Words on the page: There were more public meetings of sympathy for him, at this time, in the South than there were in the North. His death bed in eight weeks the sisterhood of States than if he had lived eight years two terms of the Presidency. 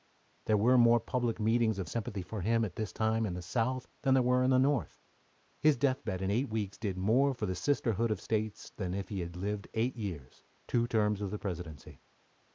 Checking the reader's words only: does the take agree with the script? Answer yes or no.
no